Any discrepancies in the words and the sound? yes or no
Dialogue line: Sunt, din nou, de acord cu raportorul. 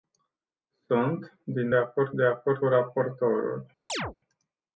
yes